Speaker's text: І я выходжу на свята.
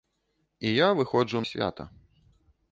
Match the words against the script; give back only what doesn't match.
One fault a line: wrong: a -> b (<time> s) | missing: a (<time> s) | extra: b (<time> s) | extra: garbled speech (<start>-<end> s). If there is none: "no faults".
missing: на (1.4 s)